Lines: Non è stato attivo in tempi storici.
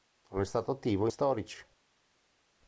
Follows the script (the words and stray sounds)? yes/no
no